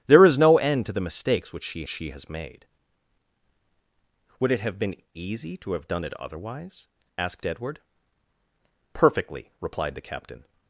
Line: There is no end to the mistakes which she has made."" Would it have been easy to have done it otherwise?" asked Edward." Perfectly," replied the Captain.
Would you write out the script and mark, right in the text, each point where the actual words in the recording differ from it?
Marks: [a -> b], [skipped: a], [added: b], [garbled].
There is no end to the mistakes which she [added: she] has made."" Would it have been easy to have done it otherwise?" asked Edward." Perfectly," replied the Captain.